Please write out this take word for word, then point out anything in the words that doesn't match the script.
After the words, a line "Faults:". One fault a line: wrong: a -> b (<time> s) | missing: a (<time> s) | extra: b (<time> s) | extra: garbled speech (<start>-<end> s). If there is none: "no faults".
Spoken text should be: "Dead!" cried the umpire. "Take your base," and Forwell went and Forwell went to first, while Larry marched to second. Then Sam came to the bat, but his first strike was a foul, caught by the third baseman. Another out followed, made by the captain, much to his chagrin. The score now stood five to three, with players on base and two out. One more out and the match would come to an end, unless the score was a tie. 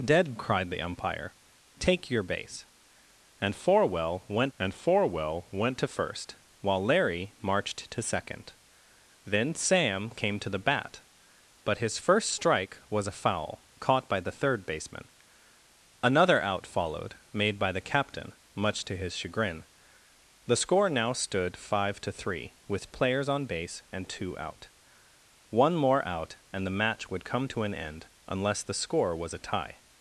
"Dead!" cried the umpire. "Take your base," and Forwell went and Forwell went to first, while Larry marched to second. Then Sam came to the bat, but his first strike was a foul, caught by the third baseman. Another out followed, made by the captain, much to his chagrin. The score now stood five to three, with players on base and two out. One more out and the match would come to an end, unless the score was a tie.
Faults:
no faults